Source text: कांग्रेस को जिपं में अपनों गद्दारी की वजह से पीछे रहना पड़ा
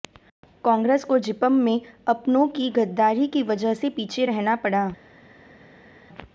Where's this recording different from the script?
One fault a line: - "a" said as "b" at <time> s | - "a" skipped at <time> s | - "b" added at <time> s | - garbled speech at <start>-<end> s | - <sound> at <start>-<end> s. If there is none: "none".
- "की" added at 2.5 s